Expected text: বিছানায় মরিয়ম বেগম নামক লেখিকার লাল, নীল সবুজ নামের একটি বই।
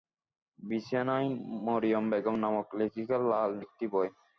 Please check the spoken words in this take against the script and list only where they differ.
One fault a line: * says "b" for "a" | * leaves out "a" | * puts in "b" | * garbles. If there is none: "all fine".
* leaves out "নীল সবুজ নামের"